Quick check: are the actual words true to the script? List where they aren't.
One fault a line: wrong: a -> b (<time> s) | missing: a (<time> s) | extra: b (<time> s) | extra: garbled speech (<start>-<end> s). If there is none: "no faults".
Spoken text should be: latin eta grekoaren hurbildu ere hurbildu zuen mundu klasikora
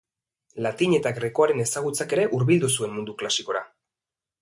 wrong: hurbildu -> ezagutzak (1.7 s)